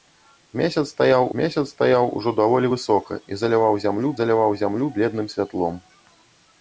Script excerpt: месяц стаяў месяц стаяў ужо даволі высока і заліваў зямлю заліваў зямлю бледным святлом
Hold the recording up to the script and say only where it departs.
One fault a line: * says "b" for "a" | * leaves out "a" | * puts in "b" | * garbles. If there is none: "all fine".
all fine